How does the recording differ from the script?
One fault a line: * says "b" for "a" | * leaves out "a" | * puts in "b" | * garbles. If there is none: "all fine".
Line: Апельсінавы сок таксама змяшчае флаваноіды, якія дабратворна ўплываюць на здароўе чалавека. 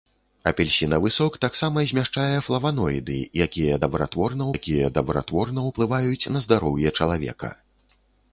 * puts in "якія дабратворна"